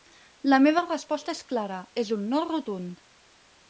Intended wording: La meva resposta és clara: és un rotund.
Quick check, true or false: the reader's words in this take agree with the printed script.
false